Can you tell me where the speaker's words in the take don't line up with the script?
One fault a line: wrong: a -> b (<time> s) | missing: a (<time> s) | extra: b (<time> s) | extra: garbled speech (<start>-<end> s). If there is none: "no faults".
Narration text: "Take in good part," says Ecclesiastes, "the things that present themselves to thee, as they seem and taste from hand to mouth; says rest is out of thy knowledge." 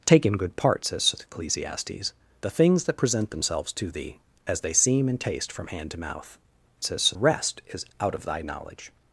no faults